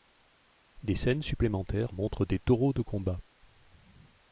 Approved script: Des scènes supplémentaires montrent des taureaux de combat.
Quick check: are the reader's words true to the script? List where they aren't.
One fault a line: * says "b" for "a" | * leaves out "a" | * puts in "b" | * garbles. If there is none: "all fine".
all fine